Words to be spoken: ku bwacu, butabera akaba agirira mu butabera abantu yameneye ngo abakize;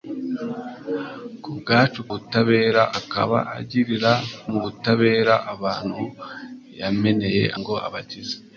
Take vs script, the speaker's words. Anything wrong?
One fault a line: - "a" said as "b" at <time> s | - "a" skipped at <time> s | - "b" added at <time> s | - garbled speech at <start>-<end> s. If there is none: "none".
none